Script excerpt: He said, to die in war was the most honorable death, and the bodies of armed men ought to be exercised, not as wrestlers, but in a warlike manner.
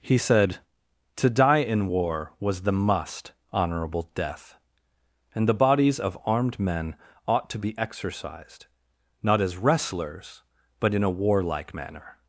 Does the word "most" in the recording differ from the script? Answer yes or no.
yes